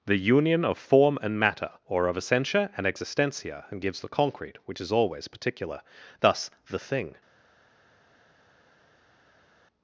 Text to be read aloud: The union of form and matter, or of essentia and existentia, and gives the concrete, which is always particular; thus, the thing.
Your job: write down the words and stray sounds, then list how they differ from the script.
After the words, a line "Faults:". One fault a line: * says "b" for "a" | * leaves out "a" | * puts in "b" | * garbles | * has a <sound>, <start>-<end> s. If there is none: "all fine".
The union of form and matter, or of essentia and existentia, and gives the concrete, which is always particular; thus, the thing.
Faults:
all fine